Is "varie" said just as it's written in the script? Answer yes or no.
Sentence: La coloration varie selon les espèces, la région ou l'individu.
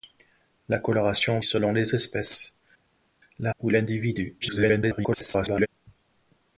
no